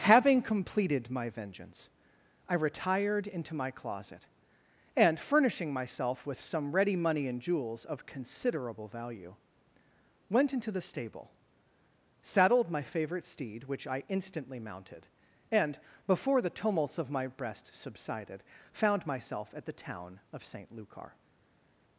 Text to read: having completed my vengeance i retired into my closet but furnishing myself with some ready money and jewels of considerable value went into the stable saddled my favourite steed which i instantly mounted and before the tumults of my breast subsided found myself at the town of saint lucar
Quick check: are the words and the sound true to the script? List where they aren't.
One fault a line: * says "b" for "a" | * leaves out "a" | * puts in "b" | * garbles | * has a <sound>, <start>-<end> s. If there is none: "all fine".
* says "and" for "but"